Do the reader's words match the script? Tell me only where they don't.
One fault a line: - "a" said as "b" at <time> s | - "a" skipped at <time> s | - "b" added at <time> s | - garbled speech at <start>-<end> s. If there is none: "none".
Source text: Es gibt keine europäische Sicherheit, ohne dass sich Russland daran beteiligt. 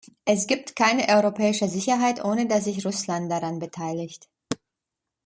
none